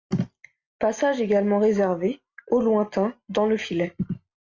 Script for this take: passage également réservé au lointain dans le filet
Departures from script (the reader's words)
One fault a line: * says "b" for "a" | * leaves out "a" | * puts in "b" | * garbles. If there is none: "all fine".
all fine